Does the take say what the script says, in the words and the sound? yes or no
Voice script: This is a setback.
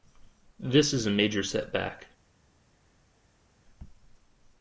no